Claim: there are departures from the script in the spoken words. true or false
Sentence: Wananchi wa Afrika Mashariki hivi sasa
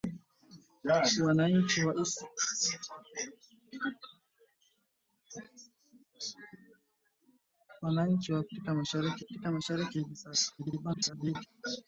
true